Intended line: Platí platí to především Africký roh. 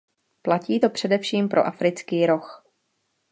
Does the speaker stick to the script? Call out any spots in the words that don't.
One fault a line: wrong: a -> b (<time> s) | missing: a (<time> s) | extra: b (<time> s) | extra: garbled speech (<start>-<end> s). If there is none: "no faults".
missing: platí (0.8 s)
extra: pro (1.5 s)